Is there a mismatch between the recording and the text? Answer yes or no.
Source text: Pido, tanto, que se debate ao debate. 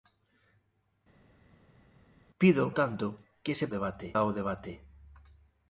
no